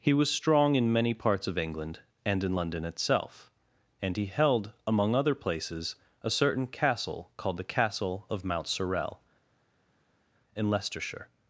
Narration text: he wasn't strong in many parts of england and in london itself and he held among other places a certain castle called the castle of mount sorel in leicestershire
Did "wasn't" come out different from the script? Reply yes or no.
yes